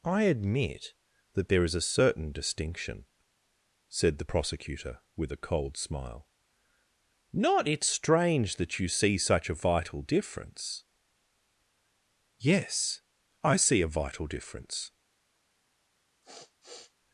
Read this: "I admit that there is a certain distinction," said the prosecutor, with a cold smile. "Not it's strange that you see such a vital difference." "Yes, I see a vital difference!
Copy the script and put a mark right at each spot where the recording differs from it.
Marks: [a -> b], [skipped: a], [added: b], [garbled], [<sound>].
"I admit that there is a certain distinction," said the prosecutor, with a cold smile. "Not it's strange that you see such a vital difference." "Yes, I see a vital difference! [sniff]